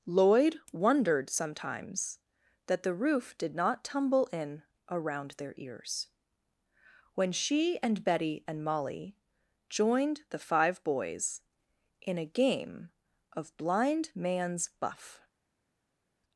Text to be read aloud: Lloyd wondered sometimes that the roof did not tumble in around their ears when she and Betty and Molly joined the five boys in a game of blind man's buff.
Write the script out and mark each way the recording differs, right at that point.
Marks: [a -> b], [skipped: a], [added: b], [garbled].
Lloyd wondered sometimes that the roof did not tumble in around their ears when she and Betty and Molly joined the five boys in a game of blind man's buff.